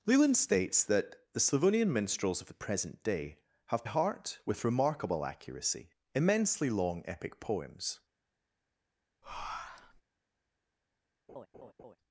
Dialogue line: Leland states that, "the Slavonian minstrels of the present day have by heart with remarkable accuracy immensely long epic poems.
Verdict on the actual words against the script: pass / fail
fail